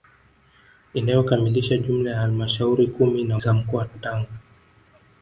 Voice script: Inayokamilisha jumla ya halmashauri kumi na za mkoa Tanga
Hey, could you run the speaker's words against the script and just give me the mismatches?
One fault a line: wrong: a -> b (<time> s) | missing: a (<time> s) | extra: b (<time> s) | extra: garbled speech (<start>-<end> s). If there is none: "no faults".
no faults